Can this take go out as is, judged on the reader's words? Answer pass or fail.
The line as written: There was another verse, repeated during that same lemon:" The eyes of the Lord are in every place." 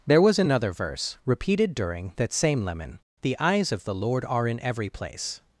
pass